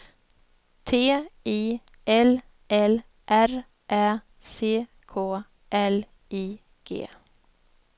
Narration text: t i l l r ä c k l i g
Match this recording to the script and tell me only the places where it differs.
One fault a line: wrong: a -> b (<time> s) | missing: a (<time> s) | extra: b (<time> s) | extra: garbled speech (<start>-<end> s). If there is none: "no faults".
no faults